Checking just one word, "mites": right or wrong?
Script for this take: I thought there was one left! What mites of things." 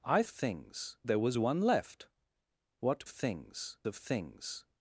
wrong